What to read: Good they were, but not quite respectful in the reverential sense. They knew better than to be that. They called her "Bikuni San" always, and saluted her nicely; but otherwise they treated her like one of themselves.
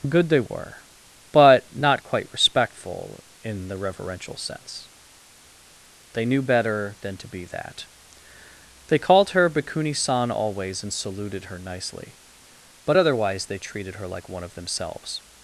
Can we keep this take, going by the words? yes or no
yes